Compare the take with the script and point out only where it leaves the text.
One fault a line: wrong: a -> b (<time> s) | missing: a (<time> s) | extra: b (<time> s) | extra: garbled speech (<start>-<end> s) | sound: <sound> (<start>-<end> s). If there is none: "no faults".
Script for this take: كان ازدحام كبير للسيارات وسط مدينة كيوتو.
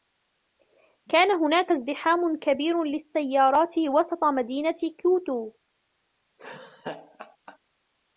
extra: هناك (1.3 s)
sound: laugh (6.4-7.6 s)